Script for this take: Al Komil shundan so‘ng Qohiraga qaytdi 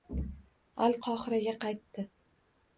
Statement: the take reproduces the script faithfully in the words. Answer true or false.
false